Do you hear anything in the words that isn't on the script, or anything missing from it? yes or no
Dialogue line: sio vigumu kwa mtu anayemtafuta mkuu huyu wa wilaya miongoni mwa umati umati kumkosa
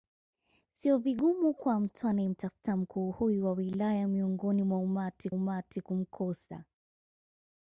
no